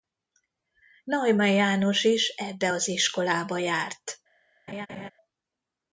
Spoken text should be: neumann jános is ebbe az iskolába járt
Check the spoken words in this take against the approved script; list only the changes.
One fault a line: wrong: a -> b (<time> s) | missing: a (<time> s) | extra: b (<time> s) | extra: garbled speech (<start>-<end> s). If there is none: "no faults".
no faults